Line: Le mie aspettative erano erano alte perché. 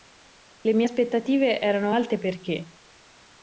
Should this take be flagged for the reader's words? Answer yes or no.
yes